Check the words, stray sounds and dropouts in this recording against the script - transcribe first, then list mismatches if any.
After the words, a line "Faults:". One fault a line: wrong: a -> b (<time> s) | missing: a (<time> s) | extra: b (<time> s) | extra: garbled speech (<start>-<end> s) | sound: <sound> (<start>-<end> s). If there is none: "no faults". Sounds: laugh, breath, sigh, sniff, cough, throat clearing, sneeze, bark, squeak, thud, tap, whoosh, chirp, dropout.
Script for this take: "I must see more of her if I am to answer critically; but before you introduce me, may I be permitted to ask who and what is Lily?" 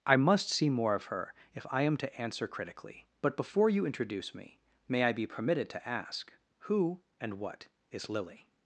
"I must see more of her if I am to answer critically; but before you introduce me, may I be permitted to ask who and what is Lily?"
Faults:
no faults